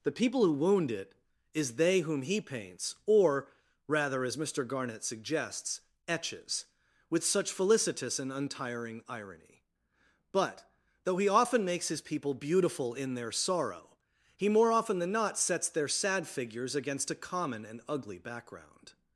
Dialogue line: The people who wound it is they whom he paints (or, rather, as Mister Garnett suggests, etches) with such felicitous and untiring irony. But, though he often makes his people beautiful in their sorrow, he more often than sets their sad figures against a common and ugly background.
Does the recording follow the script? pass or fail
fail